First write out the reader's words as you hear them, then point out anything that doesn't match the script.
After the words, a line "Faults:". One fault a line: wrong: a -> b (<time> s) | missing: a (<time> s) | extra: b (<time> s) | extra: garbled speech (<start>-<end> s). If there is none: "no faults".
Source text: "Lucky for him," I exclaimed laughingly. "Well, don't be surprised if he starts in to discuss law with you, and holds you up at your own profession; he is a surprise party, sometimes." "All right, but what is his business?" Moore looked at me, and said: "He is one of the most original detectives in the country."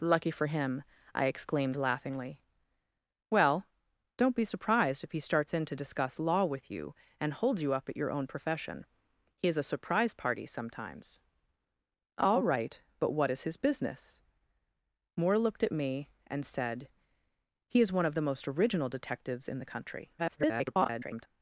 "Lucky for him," I exclaimed laughingly. "Well, don't be surprised if he starts in to discuss law with you, and holds you up at your own profession; he is a surprise party, sometimes." "All right, but what is his business?" Moore looked at me, and said: "He is one of the most original detectives in the country." [garbled]
Faults:
extra: garbled speech (20.2-21.3 s)